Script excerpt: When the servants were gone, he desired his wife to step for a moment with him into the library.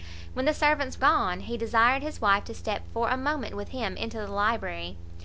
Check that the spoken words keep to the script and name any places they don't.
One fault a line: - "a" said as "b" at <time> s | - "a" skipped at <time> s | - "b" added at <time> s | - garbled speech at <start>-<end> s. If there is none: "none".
- "were" skipped at 1.0 s